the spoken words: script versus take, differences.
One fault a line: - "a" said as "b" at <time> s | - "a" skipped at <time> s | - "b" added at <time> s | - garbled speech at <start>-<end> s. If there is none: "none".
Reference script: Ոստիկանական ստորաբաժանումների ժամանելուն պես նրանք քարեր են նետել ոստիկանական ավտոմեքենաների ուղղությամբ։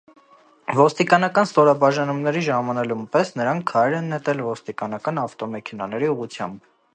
none